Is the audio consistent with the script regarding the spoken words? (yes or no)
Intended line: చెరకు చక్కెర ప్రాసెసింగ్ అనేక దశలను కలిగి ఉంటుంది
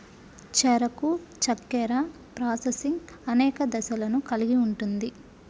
yes